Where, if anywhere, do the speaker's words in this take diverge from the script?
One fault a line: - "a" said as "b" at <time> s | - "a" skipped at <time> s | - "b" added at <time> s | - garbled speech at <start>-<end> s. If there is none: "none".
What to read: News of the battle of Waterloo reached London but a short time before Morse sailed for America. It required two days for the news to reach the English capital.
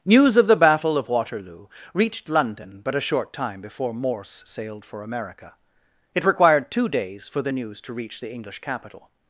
none